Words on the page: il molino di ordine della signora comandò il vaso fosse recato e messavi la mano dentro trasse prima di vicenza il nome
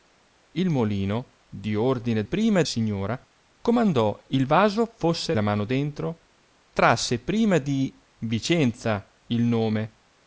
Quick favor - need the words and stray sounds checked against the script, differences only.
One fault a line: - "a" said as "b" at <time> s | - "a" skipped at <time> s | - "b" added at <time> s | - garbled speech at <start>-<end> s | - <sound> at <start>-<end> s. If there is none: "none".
- "della" said as "prima" at 2.2 s
- "recato e messavi" skipped at 5.3 s